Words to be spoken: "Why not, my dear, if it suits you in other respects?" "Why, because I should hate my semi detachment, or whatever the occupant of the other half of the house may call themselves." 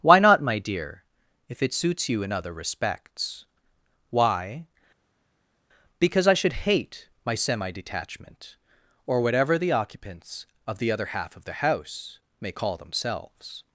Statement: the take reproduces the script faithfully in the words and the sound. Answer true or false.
false